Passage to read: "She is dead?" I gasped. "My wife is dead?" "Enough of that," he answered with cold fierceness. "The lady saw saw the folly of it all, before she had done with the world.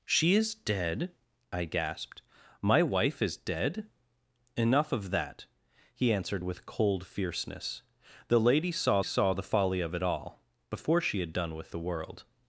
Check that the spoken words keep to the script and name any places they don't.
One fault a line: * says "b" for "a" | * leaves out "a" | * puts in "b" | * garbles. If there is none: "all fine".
all fine